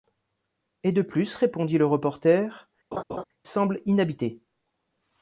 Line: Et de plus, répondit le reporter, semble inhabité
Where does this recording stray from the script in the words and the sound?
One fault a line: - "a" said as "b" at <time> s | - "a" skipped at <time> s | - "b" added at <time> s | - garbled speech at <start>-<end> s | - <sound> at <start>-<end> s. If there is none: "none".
- laugh at 2.9-3.2 s